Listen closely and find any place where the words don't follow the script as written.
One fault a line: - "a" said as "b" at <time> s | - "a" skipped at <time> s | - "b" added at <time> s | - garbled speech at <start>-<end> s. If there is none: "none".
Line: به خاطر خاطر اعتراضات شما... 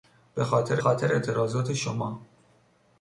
none